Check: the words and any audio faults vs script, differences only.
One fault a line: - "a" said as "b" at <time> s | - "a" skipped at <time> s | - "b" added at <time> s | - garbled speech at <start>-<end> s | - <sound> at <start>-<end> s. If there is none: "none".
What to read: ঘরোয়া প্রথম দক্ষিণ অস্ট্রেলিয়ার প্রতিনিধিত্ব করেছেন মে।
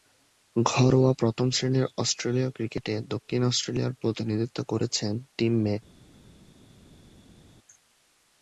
- "শ্রেণীর অস্ট্রেলীয় ক্রিকেটে" added at 1.5 s
- "টিম" added at 5.4 s